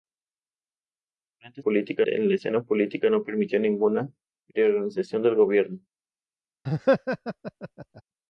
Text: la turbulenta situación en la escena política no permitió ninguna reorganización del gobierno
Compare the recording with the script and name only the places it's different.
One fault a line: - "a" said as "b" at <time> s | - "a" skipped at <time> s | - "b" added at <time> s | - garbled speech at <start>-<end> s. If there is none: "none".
- "situación" said as "política" at 1.6 s